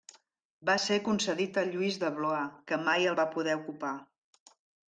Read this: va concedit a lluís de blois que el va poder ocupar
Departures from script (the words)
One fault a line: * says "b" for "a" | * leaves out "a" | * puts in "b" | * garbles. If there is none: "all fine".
* puts in "ser"
* puts in "mai"